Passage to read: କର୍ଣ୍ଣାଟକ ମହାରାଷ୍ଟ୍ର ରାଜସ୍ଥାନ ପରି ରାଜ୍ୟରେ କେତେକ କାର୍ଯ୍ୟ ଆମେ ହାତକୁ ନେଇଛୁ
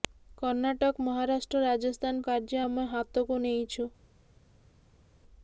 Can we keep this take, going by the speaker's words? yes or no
no